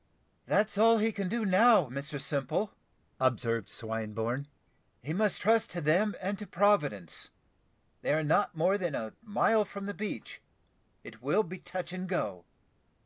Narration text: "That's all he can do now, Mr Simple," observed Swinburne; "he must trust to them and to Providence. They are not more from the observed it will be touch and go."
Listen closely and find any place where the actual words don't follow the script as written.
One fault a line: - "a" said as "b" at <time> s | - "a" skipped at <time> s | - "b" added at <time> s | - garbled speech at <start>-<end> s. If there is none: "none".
- "than a mile" added at 8.8 s
- "observed" said as "beach" at 9.9 s